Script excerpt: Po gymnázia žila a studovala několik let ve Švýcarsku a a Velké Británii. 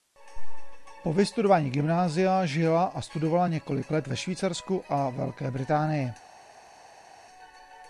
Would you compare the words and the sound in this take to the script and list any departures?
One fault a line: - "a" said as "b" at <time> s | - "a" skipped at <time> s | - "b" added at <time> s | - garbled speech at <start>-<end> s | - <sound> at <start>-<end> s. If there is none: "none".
- "vystudování" added at 1.1 s
- "a" skipped at 5.1 s